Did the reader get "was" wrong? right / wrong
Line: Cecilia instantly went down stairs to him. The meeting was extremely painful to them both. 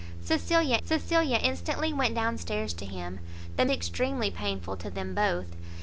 wrong